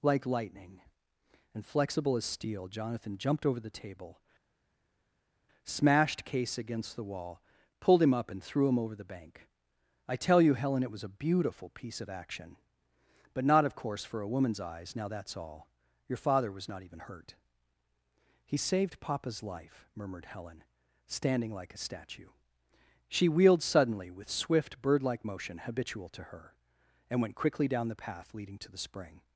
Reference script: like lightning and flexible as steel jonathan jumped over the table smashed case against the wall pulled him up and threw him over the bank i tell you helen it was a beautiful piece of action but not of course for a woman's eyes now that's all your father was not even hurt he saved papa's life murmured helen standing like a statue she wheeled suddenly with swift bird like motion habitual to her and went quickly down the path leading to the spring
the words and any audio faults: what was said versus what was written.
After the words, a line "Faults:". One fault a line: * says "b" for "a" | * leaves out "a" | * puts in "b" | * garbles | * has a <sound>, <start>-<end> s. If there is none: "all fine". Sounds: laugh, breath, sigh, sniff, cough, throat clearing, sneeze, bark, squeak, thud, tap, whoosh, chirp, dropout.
like lightning and flexible as steel jonathan jumped over the table smashed case against the wall pulled him up and threw him over the bank i tell you helen it was a beautiful piece of action but not of course for a woman's eyes now that's all your father was not even hurt he saved papa's life murmured helen standing like a statue she wheeled suddenly with swift bird like motion habitual to her and went quickly down the path leading to the spring
Faults:
all fine